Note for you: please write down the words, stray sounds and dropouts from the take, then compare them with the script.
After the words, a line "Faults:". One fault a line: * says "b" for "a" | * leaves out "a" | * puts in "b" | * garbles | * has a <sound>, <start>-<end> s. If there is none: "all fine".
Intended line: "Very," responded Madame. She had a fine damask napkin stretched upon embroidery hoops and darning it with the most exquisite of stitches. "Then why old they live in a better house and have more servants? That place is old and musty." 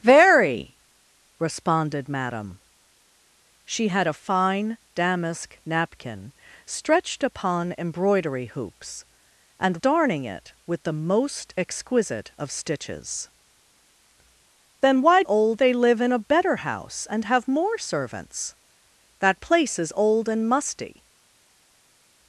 "Very," responded Madame. She had a fine damask napkin stretched upon embroidery hoops and darning it with the most exquisite of stitches. "Then why old they live in a better house and have more servants? That place is old and musty."
Faults:
all fine